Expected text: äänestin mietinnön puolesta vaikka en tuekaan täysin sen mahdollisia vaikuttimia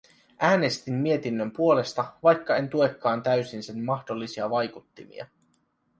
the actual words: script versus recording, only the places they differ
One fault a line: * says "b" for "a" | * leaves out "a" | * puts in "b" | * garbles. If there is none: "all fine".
all fine